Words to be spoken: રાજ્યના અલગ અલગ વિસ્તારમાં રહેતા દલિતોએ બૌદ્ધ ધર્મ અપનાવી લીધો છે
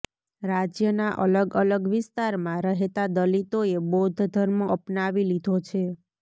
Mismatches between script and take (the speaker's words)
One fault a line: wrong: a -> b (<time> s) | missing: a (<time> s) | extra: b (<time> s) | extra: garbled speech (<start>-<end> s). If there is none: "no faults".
no faults